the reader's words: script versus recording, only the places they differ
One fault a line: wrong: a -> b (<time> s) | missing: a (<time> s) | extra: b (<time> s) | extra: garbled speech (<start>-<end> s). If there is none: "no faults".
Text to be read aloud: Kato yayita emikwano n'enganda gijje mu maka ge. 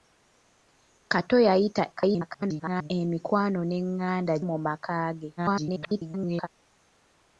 extra: garbled speech (1.9-2.9 s)
missing: gijje (4.3 s)
extra: garbled speech (5.4-6.5 s)